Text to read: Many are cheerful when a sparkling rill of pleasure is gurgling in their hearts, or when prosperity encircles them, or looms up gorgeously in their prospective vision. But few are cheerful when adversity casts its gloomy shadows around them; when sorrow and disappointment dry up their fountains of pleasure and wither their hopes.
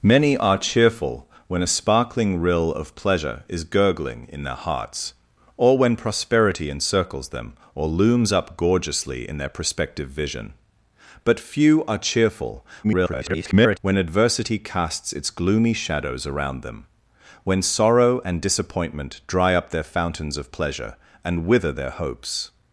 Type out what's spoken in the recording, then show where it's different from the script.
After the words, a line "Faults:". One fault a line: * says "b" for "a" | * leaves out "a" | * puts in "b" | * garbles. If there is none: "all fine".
Many are cheerful when a sparkling rill of pleasure is gurgling in their hearts, or when prosperity encircles them, or looms up gorgeously in their prospective vision. But few are cheerful [garbled] when adversity casts its gloomy shadows around them; when sorrow and disappointment dry up their fountains of pleasure and wither their hopes.
Faults:
* garbles